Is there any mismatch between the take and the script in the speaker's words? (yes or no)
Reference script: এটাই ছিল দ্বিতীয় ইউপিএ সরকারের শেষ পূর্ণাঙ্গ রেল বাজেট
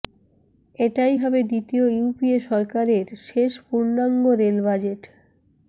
yes